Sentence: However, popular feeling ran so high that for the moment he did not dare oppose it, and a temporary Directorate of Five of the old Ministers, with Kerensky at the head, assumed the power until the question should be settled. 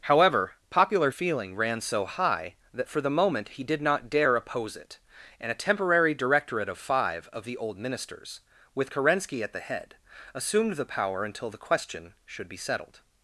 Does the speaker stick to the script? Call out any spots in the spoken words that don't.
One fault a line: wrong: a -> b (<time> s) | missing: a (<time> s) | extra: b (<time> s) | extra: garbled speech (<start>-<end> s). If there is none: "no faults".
no faults